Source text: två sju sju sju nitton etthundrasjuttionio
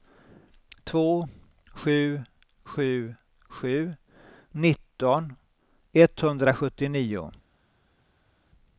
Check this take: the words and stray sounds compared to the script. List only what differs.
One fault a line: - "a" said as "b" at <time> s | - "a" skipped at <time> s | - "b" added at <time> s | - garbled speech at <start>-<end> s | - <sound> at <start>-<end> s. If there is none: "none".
none